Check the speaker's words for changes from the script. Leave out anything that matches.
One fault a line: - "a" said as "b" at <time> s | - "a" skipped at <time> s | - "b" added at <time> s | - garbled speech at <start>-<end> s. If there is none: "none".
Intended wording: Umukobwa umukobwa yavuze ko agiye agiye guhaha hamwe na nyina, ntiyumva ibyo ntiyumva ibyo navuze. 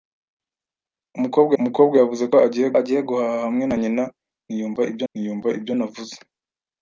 none